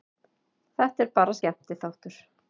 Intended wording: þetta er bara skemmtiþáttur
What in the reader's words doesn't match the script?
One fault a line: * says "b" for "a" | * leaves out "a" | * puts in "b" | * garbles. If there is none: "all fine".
all fine